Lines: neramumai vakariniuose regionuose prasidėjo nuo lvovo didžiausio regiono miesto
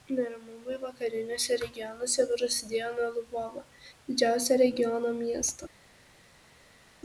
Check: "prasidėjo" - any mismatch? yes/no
no